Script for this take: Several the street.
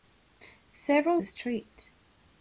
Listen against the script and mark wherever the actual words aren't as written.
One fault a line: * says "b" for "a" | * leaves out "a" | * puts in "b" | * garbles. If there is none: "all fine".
all fine